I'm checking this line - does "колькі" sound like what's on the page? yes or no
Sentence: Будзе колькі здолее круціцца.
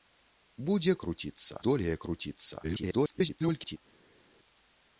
no